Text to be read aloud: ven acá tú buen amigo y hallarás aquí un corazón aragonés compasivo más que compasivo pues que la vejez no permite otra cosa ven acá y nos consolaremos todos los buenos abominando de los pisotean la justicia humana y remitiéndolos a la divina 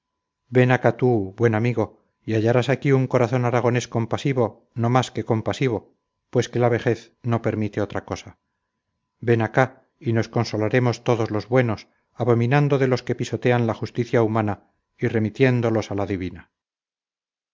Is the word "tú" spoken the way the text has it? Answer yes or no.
yes